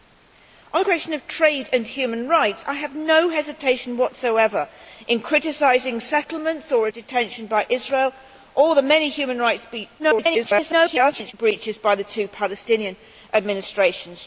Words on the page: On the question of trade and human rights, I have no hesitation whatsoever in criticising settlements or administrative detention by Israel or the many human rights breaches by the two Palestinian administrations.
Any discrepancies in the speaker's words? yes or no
yes